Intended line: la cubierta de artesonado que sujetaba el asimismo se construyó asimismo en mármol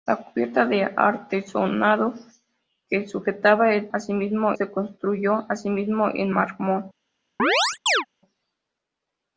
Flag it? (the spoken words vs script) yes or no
no